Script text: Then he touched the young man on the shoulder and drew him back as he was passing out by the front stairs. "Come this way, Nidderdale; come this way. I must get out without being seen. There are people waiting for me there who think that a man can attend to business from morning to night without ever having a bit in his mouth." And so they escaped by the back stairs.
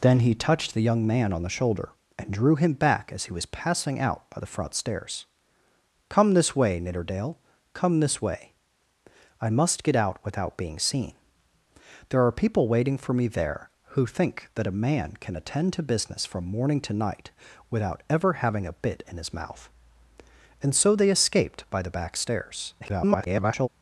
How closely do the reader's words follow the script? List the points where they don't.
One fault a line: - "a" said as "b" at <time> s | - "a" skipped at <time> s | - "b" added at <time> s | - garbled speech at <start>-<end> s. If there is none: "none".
- garbled speech at 22.8-23.7 s